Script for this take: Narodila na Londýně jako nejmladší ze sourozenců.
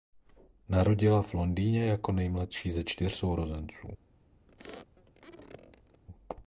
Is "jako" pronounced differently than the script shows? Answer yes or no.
no